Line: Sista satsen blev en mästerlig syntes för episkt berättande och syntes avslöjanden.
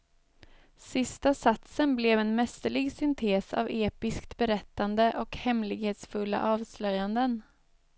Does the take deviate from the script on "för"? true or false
true